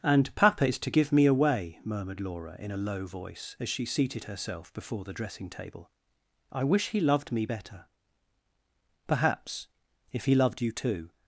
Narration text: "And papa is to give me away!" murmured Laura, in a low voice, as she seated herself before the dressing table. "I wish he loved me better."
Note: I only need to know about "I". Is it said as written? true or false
true